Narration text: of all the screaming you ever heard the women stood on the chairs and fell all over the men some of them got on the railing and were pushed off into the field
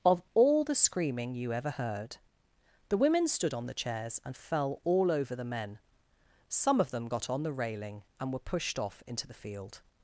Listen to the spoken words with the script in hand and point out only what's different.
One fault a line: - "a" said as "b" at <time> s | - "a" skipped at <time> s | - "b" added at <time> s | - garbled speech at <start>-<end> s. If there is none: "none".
none